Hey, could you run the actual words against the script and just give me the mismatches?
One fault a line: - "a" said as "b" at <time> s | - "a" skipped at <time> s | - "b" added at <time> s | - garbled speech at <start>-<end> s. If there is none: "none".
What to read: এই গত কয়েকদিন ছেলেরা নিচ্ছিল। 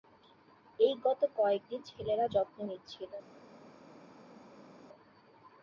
- "যত্ন" added at 2.3 s